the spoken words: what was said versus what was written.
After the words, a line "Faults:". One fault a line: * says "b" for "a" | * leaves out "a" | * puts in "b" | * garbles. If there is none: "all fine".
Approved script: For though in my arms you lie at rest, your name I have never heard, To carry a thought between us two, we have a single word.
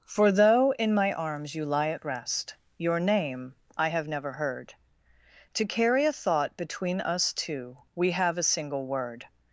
For though in my arms you lie at rest, your name I have never heard, To carry a thought between us two, we have a single word.
Faults:
all fine